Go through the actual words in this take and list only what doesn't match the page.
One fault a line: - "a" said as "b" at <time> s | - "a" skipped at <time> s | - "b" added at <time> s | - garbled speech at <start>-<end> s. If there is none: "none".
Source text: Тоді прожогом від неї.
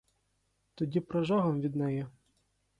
none